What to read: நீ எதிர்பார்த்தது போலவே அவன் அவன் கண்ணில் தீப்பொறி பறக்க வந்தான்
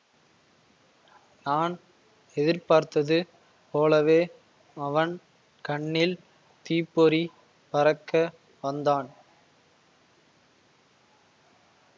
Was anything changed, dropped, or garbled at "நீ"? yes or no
yes